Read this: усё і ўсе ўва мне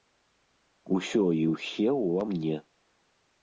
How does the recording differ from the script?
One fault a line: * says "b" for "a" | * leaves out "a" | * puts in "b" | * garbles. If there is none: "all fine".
all fine